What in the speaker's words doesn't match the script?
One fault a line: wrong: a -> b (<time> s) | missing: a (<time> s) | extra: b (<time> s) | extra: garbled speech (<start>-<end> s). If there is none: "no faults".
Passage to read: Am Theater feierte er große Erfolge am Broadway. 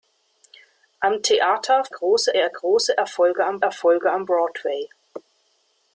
wrong: feierte -> große (1.9 s)
extra: Erfolge am (3.6 s)